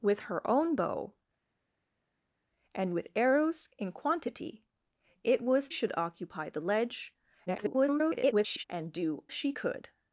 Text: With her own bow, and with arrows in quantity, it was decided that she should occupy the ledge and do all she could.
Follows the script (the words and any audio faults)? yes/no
no